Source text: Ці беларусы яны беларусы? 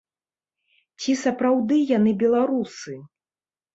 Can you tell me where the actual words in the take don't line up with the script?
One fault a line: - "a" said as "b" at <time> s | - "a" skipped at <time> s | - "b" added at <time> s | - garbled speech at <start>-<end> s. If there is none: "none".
- "беларусы" said as "сапраўды" at 1.2 s